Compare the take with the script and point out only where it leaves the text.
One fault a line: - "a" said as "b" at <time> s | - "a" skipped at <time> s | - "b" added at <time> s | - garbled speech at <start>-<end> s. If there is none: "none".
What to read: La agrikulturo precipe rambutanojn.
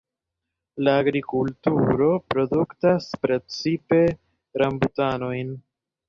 - "produktas" added at 2.4 s